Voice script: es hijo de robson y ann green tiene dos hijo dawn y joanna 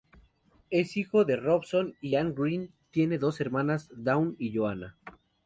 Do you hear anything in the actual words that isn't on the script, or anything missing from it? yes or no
yes